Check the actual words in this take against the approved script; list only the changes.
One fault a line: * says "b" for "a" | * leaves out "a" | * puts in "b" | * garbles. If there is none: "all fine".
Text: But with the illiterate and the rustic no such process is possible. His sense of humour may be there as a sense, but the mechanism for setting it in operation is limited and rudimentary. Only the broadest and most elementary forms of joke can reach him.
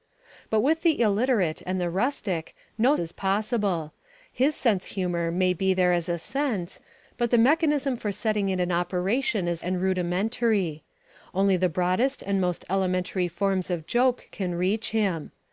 * leaves out "such process"
* leaves out "of"
* leaves out "limited"